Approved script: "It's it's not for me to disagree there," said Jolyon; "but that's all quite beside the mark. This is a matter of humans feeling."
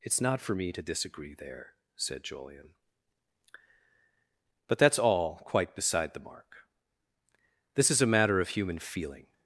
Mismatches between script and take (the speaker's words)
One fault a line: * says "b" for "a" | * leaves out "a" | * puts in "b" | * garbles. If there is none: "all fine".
* leaves out "it's"
* says "human" for "humans"